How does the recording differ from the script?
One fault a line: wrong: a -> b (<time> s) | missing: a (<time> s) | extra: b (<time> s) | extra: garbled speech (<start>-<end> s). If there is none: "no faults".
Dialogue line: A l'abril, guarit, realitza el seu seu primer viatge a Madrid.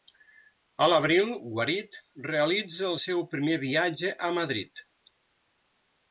missing: seu (3.2 s)